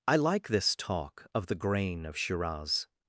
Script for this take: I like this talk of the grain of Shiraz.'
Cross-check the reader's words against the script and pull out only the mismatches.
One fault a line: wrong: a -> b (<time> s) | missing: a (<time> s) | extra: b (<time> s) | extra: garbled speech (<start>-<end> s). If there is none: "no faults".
no faults